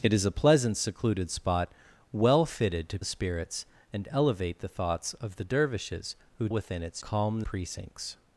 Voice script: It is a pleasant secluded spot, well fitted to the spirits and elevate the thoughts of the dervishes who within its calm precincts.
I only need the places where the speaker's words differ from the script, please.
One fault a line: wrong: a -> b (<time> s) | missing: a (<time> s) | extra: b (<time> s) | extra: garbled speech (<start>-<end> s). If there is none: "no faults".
no faults